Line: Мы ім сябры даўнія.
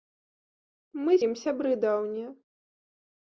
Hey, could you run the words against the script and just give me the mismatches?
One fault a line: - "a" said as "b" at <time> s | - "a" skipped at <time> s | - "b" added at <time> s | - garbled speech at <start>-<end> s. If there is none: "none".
none